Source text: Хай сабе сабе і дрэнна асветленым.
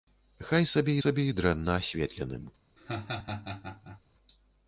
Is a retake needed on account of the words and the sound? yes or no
yes